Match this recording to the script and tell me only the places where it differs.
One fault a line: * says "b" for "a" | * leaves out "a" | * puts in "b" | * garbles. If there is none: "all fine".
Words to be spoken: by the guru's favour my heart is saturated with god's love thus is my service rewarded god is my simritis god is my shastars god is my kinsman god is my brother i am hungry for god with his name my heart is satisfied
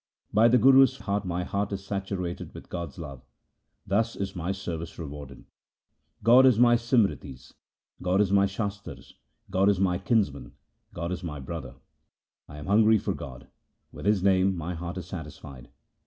* says "heart" for "favour"